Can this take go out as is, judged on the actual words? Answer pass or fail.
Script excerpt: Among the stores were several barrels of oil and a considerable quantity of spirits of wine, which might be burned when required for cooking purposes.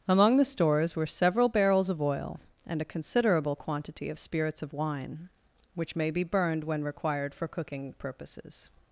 fail